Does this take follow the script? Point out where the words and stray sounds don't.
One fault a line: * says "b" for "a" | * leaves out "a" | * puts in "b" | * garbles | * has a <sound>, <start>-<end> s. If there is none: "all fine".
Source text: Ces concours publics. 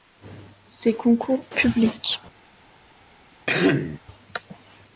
* has a throat clearing, 3.5-4.0 s